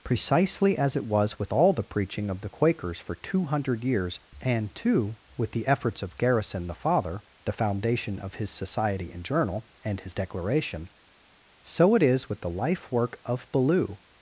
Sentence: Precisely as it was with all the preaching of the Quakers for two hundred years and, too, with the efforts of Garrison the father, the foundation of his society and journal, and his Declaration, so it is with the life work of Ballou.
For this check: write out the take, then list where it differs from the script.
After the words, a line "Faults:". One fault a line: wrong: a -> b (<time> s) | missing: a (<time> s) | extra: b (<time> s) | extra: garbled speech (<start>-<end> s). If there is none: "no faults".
Precisely as it was with all the preaching of the Quakers for two hundred years and, too, with the efforts of Garrison the father, the foundation of his society and journal, and his Declaration, so it is with the life work of Ballou.
Faults:
no faults